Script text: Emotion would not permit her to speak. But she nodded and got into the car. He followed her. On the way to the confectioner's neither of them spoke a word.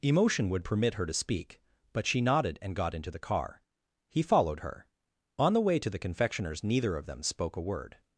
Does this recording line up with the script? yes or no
no